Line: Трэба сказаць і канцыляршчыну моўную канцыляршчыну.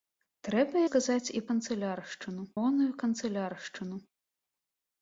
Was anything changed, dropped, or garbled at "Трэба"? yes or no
no